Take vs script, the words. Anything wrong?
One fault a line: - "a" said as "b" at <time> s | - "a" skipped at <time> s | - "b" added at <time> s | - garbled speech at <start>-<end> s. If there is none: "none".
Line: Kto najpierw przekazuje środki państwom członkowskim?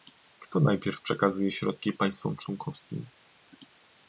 none